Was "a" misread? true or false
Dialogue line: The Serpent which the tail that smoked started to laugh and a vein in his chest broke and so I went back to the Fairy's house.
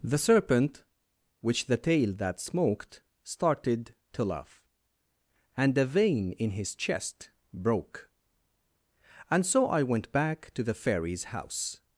false